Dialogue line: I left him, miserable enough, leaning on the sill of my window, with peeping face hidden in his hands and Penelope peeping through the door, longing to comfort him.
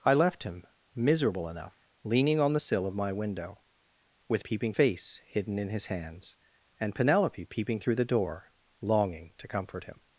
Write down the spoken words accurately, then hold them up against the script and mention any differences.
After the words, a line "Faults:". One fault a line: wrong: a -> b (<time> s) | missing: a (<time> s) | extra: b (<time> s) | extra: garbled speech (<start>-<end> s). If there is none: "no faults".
I left him, miserable enough, leaning on the sill of my window, with peeping face hidden in his hands and Penelope peeping through the door, longing to comfort him.
Faults:
no faults